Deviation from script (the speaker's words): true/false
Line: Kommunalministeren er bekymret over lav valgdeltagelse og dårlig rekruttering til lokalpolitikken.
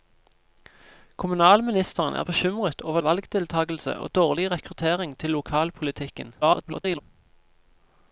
true